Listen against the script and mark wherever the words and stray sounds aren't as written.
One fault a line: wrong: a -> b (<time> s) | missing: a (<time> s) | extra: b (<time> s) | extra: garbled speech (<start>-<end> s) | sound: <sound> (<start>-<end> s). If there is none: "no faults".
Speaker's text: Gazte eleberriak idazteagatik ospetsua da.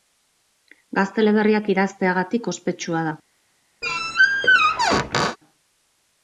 sound: squeak (3.8-5.4 s)